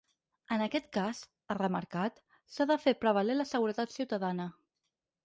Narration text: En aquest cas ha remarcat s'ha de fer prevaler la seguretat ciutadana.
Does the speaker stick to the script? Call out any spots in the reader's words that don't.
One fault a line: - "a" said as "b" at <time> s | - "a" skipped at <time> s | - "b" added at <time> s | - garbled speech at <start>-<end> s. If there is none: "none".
none